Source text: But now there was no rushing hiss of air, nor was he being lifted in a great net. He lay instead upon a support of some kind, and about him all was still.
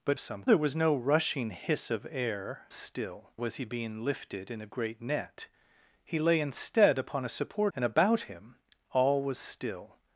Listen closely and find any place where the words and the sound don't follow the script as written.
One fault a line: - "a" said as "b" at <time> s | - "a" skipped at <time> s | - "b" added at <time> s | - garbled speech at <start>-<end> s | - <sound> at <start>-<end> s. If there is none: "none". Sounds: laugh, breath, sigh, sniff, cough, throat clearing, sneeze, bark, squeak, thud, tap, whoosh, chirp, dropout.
- "now" said as "some" at 0.2 s
- "nor" said as "still" at 2.7 s
- "of some kind" skipped at 7.7 s